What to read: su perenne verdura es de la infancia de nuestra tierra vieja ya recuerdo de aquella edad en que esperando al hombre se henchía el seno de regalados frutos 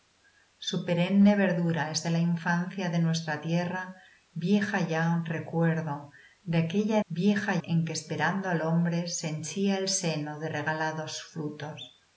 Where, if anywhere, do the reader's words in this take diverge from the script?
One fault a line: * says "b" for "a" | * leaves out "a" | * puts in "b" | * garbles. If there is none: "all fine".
* says "vieja" for "edad"